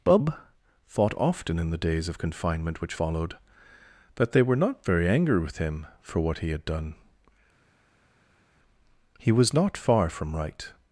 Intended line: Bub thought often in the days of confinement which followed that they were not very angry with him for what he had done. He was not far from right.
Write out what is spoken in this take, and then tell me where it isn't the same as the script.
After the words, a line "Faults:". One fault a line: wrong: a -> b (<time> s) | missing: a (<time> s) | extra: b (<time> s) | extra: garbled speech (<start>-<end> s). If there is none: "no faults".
Bub thought often in the days of confinement which followed that they were not very angry with him for what he had done. He was not far from right.
Faults:
no faults